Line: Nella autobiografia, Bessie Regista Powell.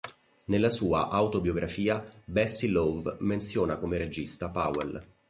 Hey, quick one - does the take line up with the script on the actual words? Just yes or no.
no